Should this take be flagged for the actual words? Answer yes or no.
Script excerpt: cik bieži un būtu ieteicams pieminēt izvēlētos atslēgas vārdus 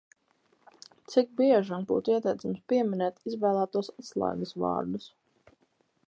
no